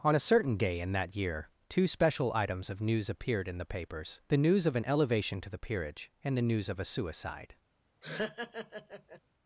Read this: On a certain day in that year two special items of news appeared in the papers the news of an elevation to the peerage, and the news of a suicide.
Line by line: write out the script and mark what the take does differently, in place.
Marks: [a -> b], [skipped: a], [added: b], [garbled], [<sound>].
On a certain day in that year two special items of news appeared in the papers the news of an elevation to the peerage, and the news of a suicide. [laugh]